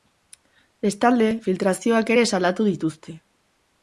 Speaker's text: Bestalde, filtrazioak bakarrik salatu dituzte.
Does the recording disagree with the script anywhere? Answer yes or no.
yes